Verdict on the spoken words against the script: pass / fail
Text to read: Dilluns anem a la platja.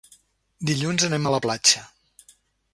pass